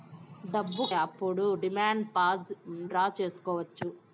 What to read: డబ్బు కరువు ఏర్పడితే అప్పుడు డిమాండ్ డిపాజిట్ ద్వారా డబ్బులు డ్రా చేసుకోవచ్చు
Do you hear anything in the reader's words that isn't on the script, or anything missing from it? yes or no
yes